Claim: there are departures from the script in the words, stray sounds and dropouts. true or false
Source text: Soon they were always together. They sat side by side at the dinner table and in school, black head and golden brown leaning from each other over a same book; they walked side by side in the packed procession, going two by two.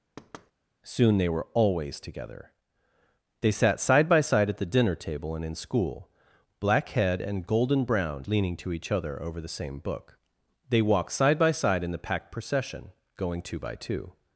true